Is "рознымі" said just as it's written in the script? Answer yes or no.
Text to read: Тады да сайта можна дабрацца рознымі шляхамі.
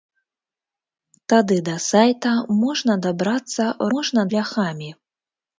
no